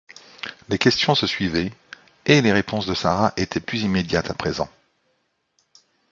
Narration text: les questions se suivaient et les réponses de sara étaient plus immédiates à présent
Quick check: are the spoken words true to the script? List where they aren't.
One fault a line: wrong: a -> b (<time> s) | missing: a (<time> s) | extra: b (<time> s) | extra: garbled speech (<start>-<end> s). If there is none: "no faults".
no faults